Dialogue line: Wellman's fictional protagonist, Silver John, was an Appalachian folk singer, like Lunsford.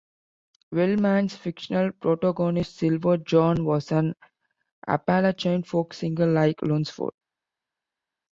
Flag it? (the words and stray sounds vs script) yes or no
no